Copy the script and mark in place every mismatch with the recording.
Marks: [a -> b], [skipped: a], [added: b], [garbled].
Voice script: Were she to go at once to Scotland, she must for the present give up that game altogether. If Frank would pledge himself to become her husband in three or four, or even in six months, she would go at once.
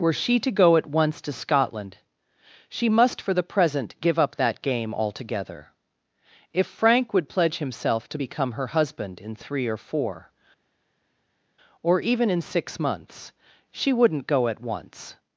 Were she to go at once to Scotland, she must for the present give up that game altogether. If Frank would pledge himself to become her husband in three or four, or even in six months, she [would -> wouldn't] go at once.